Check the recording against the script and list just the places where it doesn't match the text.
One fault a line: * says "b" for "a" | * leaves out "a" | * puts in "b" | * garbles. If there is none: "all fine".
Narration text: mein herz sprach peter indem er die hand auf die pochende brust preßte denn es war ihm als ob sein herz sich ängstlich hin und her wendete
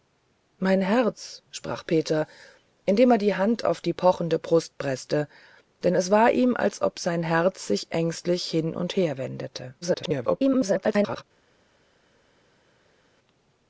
* garbles